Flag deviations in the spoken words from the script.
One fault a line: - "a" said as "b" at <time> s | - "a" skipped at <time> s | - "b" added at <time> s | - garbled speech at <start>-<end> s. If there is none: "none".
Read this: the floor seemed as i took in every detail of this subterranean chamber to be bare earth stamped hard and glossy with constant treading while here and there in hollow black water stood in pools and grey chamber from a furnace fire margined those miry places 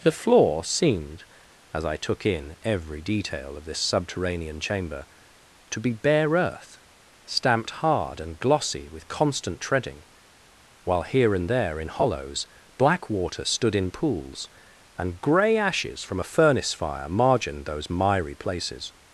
- "hollow" said as "hollows" at 11.9 s
- "chamber" said as "ashes" at 15.6 s